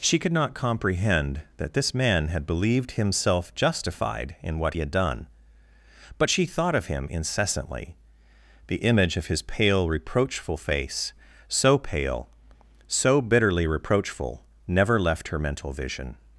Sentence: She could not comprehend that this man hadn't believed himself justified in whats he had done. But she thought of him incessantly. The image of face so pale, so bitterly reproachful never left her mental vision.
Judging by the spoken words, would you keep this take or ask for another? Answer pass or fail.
fail